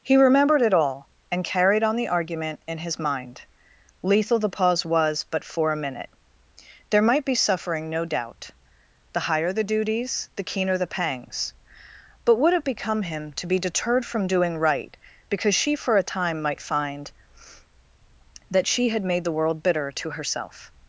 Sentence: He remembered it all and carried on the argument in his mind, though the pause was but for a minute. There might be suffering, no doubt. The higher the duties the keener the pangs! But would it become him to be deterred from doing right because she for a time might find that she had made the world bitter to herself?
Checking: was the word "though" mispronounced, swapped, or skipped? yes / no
yes